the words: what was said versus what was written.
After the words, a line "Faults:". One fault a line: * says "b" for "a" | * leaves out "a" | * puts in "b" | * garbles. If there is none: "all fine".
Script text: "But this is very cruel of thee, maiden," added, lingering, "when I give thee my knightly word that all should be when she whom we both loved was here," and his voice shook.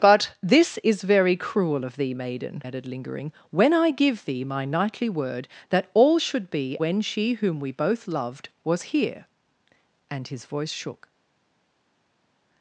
"But this is very cruel of thee, maiden," added, lingering, "when I give thee my knightly word that all should be when she whom we both loved was here," and his voice shook.
Faults:
all fine